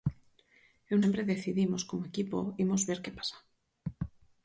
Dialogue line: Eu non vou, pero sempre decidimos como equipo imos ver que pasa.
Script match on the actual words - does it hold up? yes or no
no